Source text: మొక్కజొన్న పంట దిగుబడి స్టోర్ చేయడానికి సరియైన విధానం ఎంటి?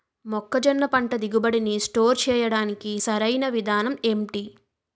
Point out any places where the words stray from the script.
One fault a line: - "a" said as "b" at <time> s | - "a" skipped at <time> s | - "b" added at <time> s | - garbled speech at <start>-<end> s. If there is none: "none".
- "నీ" added at 1.6 s